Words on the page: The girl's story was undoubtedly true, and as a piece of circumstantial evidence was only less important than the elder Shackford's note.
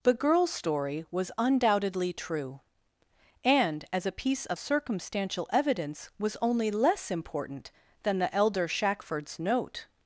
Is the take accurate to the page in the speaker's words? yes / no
yes